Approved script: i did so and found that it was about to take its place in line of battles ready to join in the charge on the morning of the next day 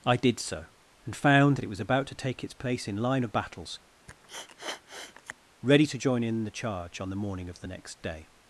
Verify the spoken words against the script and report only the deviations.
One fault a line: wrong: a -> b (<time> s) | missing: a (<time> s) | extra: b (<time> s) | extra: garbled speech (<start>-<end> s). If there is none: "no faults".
no faults